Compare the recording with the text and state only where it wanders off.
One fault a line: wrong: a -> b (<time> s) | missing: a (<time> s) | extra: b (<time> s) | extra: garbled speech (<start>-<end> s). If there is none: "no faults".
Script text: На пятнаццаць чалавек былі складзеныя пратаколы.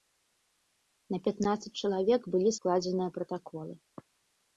no faults